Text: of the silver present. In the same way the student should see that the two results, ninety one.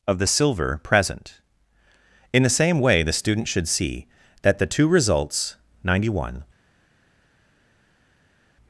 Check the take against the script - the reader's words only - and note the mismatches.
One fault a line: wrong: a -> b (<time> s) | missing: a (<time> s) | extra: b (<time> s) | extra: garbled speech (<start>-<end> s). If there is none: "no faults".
no faults